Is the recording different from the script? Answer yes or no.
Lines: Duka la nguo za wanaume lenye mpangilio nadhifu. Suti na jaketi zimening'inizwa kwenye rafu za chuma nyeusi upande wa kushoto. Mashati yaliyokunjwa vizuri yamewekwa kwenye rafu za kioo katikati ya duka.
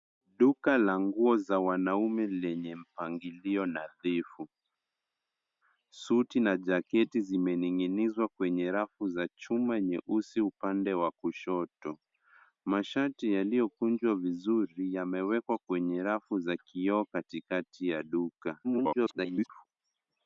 yes